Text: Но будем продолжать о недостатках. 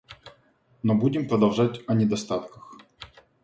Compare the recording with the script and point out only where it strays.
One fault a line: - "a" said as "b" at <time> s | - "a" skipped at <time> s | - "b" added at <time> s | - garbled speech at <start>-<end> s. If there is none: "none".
none